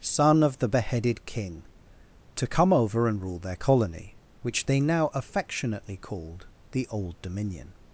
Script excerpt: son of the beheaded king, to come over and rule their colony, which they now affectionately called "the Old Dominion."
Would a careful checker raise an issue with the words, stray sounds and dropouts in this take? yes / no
no